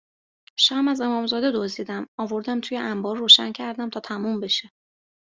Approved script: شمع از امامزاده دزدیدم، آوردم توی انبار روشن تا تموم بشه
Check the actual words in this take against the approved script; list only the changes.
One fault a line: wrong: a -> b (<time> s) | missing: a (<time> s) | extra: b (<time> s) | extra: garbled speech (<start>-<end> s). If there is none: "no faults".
extra: کردم (3.5 s)